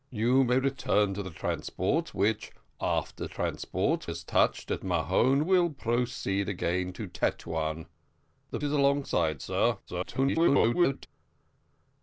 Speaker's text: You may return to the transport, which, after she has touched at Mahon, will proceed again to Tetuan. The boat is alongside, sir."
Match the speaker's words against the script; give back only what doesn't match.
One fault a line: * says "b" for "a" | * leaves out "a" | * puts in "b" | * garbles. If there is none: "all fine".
* says "transport" for "she"
* leaves out "boat"
* garbles